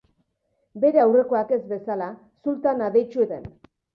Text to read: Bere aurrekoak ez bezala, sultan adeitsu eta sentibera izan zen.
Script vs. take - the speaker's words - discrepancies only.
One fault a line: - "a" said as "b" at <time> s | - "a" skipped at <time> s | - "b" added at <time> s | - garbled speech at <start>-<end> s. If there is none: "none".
- "eta sentibera izan" skipped at 3.3 s